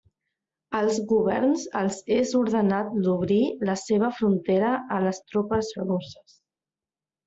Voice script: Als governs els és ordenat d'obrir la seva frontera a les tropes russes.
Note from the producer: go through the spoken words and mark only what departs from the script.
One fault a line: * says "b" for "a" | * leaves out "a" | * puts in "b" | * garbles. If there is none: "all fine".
all fine